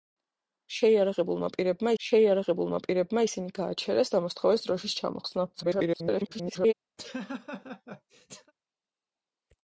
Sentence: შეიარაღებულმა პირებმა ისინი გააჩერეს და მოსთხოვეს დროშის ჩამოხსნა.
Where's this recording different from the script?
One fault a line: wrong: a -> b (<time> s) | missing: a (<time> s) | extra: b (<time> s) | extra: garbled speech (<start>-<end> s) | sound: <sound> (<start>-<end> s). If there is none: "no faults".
extra: შეიარაღებულმა პირებმა (2.0 s)
extra: garbled speech (5.5-6.7 s)
sound: laugh (7.0-8.5 s)